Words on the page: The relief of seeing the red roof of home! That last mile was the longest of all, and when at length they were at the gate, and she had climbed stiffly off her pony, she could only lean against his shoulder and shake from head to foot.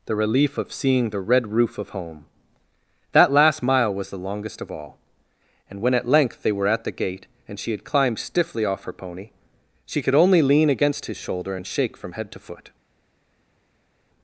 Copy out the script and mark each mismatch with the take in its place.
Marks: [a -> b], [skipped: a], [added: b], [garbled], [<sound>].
The relief of seeing the red roof of home! That last mile was the longest of all, and when at length they were at the gate, and she had climbed stiffly off her pony, she could only lean against his shoulder and shake from head to foot.